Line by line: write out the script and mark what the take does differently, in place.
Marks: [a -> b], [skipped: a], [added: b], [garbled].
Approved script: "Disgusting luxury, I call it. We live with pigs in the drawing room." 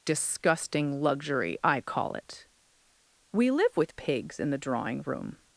"Disgusting luxury, I call it. We live with pigs in the drawing room."